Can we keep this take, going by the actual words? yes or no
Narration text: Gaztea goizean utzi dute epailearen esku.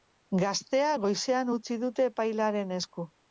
yes